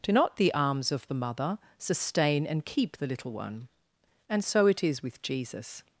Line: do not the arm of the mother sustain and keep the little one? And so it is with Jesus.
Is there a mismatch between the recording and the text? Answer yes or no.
yes